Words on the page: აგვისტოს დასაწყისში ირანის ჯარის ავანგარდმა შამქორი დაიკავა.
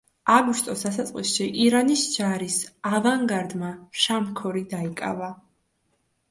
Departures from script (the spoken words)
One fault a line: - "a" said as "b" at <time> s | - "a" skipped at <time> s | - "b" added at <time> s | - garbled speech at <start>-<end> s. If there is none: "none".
none